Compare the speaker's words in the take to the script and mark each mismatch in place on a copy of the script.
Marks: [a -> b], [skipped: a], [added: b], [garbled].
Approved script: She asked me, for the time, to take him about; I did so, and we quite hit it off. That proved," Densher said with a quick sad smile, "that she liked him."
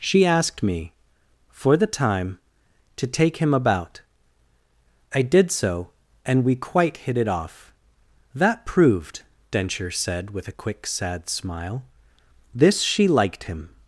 She asked me, for the time, to take him about; I did so, and we quite hit it off. That proved," Densher said with a quick sad smile, ["that -> this] she liked him."